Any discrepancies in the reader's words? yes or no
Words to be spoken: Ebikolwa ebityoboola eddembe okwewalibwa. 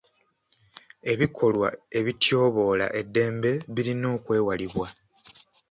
yes